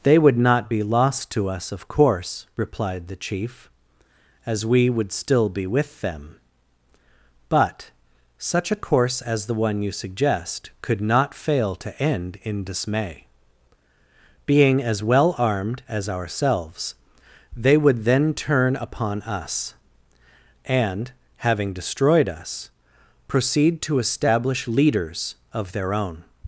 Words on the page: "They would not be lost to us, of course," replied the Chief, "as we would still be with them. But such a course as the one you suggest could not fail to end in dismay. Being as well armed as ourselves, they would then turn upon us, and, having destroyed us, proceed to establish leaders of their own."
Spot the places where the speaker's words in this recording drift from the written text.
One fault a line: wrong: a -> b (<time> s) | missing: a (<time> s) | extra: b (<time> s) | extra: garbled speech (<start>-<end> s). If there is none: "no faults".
no faults